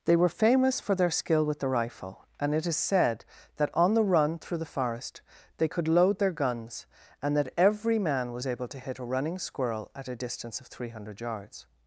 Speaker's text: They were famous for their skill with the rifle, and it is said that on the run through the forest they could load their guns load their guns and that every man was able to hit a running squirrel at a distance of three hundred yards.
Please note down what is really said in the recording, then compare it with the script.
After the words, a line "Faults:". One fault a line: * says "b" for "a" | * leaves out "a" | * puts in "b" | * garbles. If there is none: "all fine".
They were famous for their skill with the rifle, and it is said that on the run through the forest they could load their guns and that every man was able to hit a running squirrel at a distance of three hundred yards.
Faults:
* leaves out "load their guns"